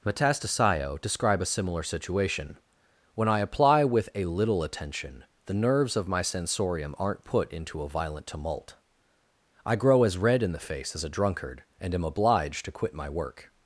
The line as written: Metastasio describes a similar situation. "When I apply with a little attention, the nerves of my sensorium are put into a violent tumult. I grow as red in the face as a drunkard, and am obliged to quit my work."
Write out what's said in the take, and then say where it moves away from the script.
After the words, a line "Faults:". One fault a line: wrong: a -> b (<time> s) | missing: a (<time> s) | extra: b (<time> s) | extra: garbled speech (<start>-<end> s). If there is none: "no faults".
Metastasio describe a similar situation. "When I apply with a little attention, the nerves of my sensorium aren't put into a violent tumult. I grow as red in the face as a drunkard, and am obliged to quit my work."
Faults:
wrong: describes -> describe (1.0 s)
wrong: are -> aren't (7.0 s)